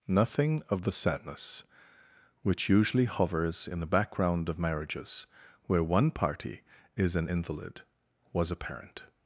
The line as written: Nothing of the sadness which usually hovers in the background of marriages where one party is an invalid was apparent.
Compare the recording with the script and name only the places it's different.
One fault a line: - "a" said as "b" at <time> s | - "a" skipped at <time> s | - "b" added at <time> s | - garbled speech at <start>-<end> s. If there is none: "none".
none